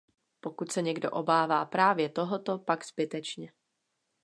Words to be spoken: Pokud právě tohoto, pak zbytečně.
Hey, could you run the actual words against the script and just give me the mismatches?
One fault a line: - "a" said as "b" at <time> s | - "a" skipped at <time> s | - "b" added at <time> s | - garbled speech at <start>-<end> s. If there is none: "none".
- "se někdo obává" added at 0.7 s